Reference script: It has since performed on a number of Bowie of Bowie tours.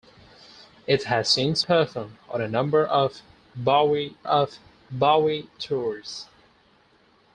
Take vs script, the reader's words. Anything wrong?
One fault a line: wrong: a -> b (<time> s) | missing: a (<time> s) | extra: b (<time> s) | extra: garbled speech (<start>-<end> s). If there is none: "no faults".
no faults